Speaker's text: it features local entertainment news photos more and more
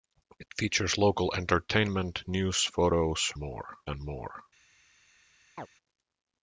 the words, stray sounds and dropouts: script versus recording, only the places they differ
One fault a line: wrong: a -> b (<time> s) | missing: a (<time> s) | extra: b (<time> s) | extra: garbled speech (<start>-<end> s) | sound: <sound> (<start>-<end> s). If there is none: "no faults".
sound: chirp (5.6-5.7 s)